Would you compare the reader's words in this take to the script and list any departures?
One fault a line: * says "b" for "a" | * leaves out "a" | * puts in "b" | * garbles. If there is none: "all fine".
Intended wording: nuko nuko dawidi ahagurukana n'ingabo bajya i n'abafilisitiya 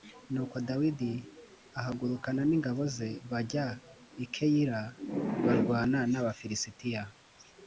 * leaves out "nuko"
* puts in "ze"
* puts in "keyila barwana"